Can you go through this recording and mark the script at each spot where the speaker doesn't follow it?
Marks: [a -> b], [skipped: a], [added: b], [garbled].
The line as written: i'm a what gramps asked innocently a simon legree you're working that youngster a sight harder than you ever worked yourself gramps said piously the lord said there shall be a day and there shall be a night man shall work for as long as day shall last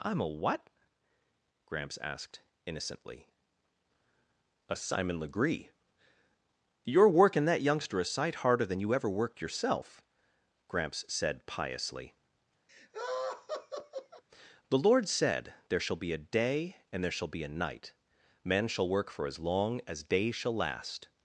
i'm a what gramps asked innocently a simon legree you're working that youngster a sight harder than you ever worked yourself gramps said piously the lord said there shall be a day and there shall be a night man shall work for as long as day shall last